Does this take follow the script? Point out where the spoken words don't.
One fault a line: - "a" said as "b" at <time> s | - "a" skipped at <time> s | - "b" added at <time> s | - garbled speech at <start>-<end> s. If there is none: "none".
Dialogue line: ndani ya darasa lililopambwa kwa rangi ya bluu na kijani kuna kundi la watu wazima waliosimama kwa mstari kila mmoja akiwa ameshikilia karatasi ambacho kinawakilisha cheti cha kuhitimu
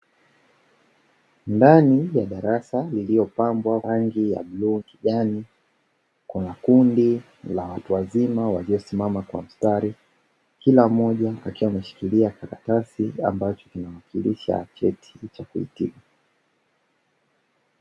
- "kwa" skipped at 3.8 s
- "na" skipped at 4.8 s